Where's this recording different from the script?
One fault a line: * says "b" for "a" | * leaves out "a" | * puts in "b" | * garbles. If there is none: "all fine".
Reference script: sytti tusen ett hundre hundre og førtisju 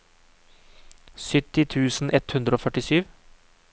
* leaves out "hundre"